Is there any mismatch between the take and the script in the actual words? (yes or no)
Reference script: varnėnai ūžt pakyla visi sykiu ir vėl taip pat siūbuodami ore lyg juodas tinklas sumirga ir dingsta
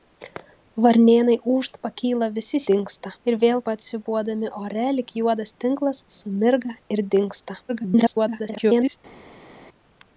yes